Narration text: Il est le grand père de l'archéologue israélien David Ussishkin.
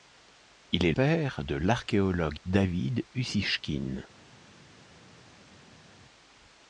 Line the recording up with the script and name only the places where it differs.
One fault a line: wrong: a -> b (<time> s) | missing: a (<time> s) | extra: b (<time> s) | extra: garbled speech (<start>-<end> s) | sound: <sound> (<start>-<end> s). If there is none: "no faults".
missing: le grand (0.9 s)
missing: israélien (2.4 s)